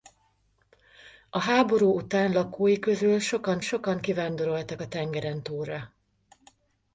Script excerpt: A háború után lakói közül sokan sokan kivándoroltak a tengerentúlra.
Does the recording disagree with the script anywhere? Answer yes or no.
no